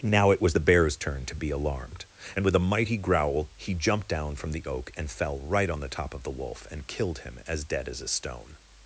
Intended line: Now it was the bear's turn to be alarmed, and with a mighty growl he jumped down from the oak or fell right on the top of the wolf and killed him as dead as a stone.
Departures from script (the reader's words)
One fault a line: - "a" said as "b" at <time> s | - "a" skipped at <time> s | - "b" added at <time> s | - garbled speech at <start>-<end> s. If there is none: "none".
- "or" said as "and" at 4.9 s